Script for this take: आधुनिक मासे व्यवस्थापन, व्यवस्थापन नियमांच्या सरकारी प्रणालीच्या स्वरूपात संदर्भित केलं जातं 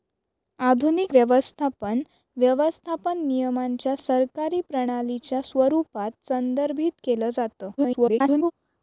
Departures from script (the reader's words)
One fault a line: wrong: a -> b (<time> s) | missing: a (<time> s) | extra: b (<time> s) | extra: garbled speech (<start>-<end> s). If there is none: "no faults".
missing: मासे (1.1 s)
extra: garbled speech (7.8-8.5 s)